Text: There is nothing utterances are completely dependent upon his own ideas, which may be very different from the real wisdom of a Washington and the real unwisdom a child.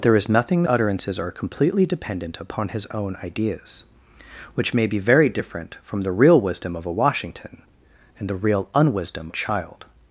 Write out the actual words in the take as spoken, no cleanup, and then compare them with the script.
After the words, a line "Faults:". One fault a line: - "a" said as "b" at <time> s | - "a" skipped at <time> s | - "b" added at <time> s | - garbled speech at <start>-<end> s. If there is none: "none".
There is nothing utterances are completely dependent upon his own ideas, which may be very different from the real wisdom of a Washington and the real unwisdom a child.
Faults:
none